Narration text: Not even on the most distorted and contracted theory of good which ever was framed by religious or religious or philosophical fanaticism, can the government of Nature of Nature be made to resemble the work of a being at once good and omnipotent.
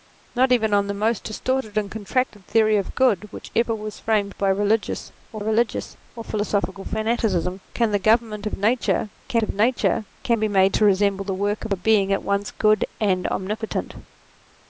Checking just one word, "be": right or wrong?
right